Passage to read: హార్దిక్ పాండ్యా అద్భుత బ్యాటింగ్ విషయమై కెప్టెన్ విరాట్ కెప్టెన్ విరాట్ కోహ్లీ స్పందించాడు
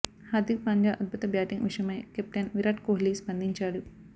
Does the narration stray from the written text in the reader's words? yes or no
yes